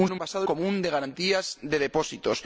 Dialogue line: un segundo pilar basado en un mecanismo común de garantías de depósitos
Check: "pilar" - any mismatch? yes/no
yes